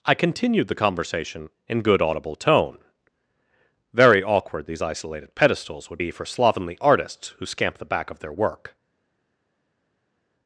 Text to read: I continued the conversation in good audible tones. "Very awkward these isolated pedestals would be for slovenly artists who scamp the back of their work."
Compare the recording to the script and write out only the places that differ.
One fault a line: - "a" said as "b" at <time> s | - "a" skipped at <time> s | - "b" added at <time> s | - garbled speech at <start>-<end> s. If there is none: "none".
- "tones" said as "tone" at 2.4 s